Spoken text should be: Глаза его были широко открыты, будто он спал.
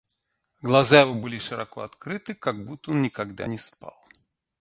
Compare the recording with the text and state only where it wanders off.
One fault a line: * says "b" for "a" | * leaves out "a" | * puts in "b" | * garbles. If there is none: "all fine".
* puts in "как"
* puts in "никогда не"